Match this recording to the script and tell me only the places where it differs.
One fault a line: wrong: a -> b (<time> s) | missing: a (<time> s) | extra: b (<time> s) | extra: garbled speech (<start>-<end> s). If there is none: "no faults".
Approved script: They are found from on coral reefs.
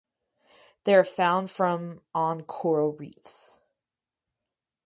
no faults